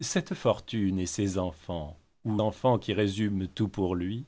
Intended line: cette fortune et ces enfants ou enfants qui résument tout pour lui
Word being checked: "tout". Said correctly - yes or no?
yes